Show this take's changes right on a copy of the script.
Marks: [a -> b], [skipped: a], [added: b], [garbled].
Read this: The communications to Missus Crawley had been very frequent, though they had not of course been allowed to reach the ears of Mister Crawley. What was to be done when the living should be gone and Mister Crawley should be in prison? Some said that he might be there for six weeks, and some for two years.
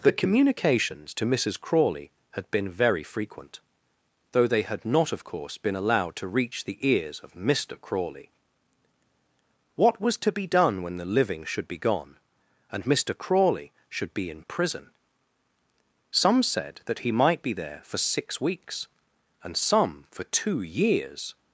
The communications to Missus Crawley had been very frequent, though they had not of course been allowed to reach the ears of Mister Crawley. What was to be done when the living should be gone and Mister Crawley should be in prison? Some said that he might be there for six weeks, and some for two years.